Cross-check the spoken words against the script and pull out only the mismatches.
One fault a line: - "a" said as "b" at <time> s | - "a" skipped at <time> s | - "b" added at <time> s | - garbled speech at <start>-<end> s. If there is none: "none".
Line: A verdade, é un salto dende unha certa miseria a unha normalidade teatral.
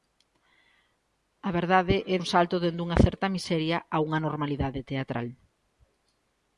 none